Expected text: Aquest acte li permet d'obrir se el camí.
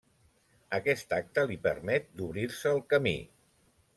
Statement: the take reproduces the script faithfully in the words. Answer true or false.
true